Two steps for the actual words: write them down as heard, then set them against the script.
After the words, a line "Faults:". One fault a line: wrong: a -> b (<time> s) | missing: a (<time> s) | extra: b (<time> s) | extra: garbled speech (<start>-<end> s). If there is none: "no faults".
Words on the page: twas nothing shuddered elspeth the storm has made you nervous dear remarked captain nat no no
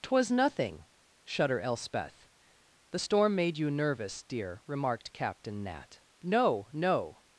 twas nothing shudder elspeth the storm made you nervous dear remarked captain nat no no
Faults:
wrong: shuddered -> shudder (1.2 s)
missing: has (3.4 s)